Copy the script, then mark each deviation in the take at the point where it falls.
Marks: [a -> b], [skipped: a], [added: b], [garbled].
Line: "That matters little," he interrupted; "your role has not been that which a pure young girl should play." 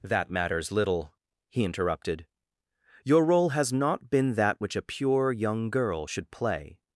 "That matters little," he interrupted; "your role has not been that which a pure young girl should play."